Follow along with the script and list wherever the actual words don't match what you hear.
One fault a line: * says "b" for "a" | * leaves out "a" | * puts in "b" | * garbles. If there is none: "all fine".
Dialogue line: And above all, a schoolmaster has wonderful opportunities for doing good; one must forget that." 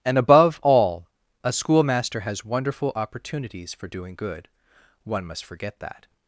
all fine